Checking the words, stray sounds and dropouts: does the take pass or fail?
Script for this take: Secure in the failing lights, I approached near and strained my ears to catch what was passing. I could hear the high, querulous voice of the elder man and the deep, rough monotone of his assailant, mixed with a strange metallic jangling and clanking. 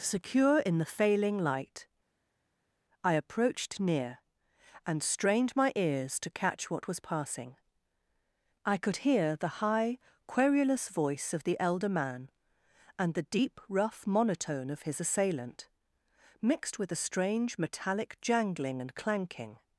fail